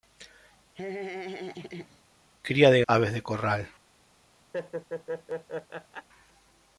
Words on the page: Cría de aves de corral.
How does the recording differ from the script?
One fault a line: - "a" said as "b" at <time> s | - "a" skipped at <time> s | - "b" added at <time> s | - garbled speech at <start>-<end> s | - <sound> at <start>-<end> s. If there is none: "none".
- laugh at 0.7-2.0 s
- laugh at 4.5-6.1 s